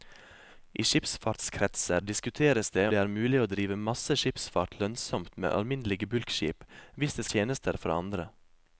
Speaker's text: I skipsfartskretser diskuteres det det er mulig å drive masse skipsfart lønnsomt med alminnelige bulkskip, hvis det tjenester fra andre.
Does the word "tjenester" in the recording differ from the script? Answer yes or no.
no